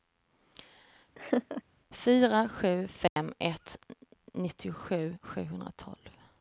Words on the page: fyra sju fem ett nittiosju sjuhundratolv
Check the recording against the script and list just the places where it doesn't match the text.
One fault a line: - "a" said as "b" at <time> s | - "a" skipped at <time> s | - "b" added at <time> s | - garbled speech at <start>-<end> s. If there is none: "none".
none